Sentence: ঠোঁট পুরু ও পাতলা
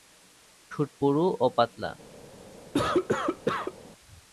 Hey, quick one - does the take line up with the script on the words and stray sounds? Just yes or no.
no